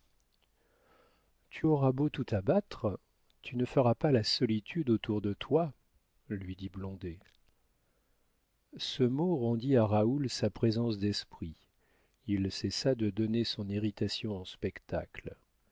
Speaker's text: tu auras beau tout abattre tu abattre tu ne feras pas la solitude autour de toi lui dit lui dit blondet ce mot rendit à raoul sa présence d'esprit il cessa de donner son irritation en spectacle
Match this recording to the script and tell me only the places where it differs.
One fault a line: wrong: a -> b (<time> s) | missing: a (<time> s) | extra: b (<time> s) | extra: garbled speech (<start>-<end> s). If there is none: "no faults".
missing: abattre tu (3.6 s)
missing: lui dit (6.7 s)